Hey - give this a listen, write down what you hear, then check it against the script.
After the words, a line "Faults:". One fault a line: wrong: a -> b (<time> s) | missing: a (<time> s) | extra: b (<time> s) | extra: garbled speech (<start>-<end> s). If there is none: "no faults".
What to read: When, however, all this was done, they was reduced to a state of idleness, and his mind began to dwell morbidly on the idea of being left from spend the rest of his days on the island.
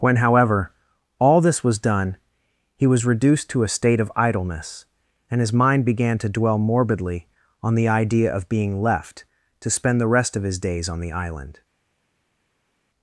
When, however, all this was done, he was reduced to a state of idleness, and his mind began to dwell morbidly on the idea of being left to spend the rest of his days on the island.
Faults:
wrong: they -> he (2.8 s)
wrong: from -> to (9.6 s)